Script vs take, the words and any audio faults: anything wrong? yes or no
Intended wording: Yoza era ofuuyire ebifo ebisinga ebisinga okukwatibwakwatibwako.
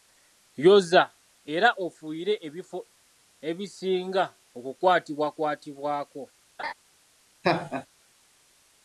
yes